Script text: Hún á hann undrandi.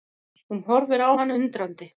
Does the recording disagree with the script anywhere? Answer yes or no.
yes